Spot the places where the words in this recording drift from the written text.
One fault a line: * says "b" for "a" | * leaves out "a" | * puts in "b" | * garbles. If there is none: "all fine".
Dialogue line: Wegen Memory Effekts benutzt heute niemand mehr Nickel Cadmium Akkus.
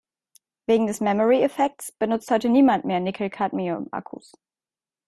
* puts in "des"